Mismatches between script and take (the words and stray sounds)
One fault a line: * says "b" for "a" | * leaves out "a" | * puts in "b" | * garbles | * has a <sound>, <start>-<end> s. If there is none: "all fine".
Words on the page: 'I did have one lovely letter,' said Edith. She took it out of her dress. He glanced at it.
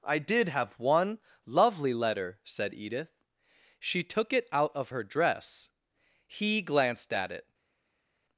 all fine